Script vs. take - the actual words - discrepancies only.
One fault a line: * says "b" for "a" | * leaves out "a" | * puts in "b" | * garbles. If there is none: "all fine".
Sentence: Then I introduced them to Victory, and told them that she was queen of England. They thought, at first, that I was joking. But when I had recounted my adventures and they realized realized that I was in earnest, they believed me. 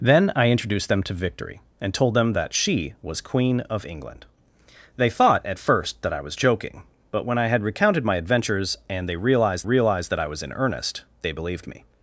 all fine